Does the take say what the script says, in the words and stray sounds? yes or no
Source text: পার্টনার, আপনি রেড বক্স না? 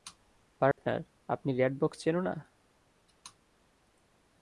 no